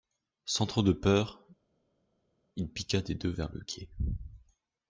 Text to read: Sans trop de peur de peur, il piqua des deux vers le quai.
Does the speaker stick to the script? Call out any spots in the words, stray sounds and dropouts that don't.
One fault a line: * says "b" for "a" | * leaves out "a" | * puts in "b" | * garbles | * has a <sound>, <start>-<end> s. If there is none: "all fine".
* leaves out "de peur"